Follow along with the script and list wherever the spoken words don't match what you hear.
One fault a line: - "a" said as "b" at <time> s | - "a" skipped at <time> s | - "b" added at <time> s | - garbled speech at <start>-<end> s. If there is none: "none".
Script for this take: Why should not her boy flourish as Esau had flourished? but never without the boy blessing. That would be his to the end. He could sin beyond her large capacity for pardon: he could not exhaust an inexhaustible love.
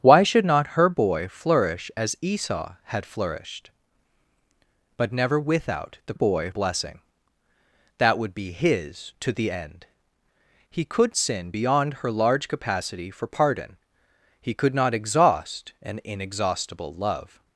none